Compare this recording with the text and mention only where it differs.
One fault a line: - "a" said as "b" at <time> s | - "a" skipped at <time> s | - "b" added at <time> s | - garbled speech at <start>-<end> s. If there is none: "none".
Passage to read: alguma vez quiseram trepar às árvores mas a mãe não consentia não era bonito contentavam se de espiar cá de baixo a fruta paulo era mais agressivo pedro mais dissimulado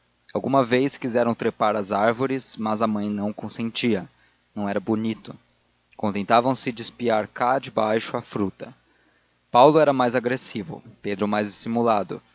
none